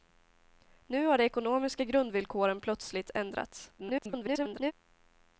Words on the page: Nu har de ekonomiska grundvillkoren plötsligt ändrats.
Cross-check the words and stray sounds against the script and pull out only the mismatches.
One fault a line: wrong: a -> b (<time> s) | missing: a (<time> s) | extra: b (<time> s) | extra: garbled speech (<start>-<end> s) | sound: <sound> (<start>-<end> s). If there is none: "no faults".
extra: garbled speech (3.8-4.7 s)